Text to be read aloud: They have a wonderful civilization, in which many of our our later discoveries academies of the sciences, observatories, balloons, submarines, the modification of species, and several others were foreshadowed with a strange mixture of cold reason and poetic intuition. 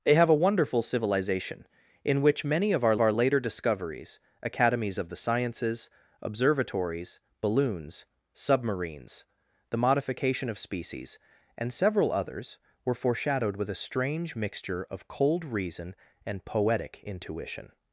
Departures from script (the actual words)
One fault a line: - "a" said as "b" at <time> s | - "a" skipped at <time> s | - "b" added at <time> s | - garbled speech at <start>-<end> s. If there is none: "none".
none